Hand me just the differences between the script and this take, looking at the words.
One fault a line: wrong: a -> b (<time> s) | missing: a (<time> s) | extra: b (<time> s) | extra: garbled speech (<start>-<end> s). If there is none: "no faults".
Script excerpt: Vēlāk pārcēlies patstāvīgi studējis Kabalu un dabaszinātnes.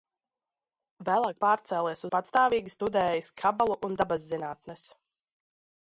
no faults